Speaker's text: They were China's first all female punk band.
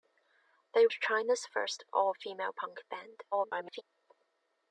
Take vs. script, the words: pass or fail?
fail